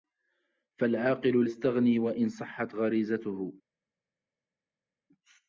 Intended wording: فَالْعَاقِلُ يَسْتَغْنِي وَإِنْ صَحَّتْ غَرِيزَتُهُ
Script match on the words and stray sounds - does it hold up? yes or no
yes